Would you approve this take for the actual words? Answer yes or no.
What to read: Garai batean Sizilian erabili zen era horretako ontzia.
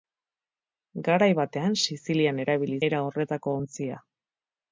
no